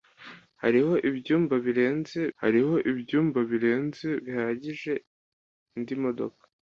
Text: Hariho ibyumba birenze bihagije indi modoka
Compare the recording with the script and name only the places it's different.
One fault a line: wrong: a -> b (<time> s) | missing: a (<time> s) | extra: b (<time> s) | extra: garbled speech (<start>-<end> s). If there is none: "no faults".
extra: hariho ibyumba birenze (2.4 s)